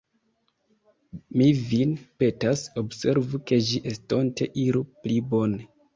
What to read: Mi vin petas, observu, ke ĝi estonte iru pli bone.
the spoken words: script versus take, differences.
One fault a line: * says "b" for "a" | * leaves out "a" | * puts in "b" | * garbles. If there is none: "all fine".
all fine